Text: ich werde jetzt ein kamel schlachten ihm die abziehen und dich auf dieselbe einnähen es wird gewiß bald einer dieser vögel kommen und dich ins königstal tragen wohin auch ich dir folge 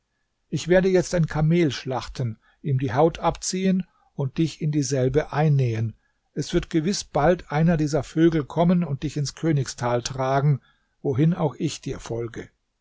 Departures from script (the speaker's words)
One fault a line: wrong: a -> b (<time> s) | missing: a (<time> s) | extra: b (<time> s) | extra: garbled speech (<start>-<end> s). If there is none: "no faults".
extra: haut (2.9 s)
wrong: auf -> in (4.6 s)